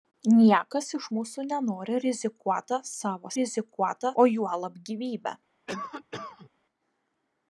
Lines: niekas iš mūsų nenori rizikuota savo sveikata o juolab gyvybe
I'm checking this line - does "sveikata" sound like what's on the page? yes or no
no